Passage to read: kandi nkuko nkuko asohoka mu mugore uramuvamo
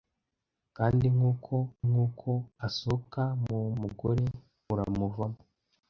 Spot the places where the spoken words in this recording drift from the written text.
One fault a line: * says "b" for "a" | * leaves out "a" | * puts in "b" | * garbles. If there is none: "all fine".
all fine